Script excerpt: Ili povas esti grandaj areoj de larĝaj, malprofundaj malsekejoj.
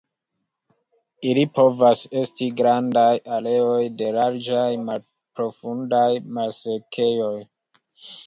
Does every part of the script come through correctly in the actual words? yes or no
yes